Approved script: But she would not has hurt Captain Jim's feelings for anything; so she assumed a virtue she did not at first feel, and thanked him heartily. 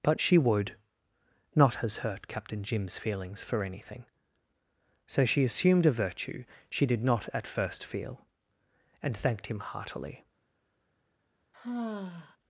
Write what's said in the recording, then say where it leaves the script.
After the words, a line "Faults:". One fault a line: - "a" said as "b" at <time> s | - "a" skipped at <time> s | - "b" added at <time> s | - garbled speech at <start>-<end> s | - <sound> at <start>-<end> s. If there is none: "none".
But she would not has hurt Captain Jim's feelings for anything; so she assumed a virtue she did not at first feel, and thanked him heartily.
Faults:
- sigh at 11.5-12.4 s